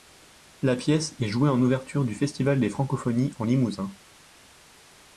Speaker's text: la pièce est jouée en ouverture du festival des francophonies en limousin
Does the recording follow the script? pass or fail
pass